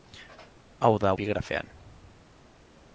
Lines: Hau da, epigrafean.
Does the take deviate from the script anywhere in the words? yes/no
no